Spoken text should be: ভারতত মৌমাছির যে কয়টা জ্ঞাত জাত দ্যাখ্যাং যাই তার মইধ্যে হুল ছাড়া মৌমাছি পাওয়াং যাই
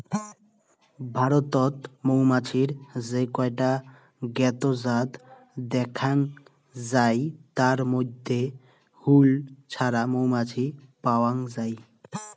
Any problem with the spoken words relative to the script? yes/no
no